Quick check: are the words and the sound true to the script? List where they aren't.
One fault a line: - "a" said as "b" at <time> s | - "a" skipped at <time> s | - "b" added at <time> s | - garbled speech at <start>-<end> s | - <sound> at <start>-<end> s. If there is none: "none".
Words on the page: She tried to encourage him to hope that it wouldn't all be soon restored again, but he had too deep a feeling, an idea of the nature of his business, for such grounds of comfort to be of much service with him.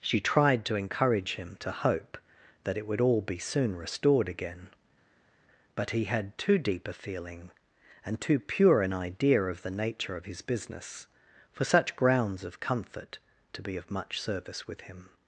- "wouldn't" said as "would" at 2.9 s
- "and too pure" added at 8.0 s